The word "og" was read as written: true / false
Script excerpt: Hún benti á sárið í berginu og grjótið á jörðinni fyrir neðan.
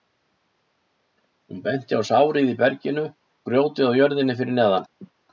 false